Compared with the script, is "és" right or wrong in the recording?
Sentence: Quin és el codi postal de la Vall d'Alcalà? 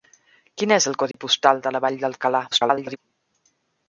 right